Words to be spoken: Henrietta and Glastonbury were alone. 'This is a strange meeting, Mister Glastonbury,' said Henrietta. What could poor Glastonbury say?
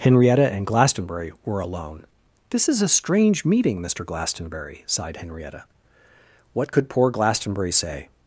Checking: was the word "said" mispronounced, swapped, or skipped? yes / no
yes